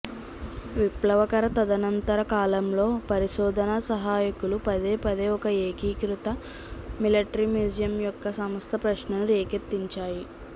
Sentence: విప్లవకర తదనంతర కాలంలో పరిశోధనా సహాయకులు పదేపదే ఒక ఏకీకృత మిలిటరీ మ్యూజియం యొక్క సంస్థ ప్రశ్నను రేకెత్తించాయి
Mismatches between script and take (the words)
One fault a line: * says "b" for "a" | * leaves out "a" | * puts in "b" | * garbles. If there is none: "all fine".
all fine